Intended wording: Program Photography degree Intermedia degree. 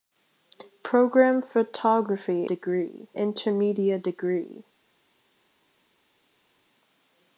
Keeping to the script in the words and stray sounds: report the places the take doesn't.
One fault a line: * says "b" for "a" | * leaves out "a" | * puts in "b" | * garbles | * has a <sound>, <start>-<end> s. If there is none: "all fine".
all fine